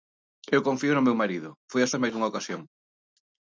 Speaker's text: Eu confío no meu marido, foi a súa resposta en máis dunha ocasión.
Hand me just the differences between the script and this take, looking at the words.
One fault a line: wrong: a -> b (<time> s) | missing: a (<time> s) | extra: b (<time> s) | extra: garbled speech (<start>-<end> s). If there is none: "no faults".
missing: súa resposta (1.9 s)